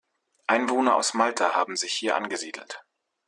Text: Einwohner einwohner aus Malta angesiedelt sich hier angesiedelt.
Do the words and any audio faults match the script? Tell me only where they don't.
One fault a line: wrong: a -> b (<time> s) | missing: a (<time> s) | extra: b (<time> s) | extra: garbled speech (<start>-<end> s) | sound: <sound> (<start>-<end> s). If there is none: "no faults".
missing: einwohner (1.0 s)
wrong: angesiedelt -> haben (1.5 s)